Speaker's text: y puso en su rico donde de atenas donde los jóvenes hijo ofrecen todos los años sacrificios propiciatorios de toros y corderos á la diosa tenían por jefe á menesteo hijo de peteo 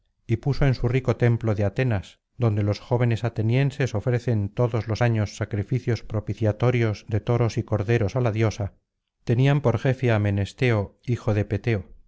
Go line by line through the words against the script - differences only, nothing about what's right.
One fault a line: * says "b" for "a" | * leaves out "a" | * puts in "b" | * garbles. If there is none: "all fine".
* says "templo" for "donde"
* says "atenienses" for "hijo"